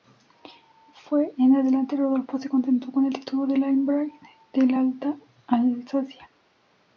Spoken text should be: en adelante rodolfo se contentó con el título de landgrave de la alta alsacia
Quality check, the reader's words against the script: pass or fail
pass